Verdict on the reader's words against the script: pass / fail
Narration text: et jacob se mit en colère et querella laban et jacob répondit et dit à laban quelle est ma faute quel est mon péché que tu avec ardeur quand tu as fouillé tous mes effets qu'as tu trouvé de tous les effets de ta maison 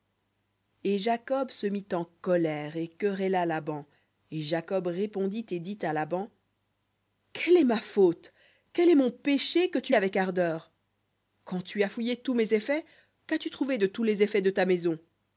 pass